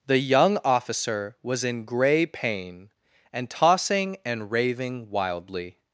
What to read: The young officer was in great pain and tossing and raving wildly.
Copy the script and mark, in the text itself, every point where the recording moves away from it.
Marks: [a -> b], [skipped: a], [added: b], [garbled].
The young officer was in [great -> grey] pain and tossing and raving wildly.